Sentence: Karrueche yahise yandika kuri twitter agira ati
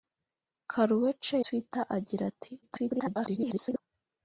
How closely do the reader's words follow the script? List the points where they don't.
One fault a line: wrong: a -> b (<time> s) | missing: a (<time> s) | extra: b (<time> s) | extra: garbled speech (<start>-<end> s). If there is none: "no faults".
missing: yahise yandika kuri (1.4 s)
extra: garbled speech (2.6-3.8 s)